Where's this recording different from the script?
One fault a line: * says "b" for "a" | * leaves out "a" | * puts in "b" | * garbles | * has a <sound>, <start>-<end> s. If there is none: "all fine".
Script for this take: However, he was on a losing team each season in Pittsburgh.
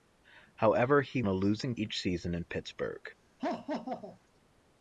* leaves out "was on"
* leaves out "team"
* has a laugh, 3.4-4.2 s